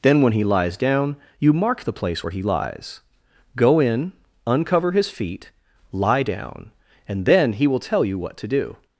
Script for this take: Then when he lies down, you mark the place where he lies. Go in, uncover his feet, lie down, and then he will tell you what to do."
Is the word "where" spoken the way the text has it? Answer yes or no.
yes